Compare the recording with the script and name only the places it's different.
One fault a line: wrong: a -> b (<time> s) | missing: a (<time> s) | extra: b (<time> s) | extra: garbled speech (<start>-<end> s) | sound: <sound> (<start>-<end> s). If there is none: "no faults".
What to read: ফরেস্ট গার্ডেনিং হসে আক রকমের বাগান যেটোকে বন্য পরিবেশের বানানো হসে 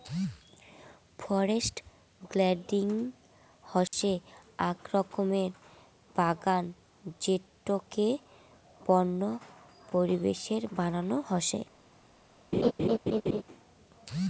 sound: dropout (3.9-3.9 s)
sound: laugh (12.5-13.4 s)